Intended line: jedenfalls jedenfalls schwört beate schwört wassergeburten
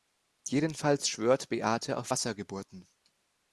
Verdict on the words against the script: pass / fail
fail